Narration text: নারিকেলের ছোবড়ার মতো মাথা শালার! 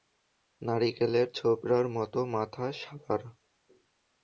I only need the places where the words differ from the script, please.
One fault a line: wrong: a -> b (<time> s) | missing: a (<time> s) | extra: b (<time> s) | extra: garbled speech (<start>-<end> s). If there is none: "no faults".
no faults